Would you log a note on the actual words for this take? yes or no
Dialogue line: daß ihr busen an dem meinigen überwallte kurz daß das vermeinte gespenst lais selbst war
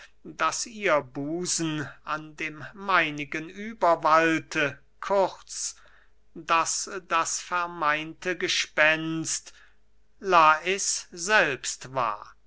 no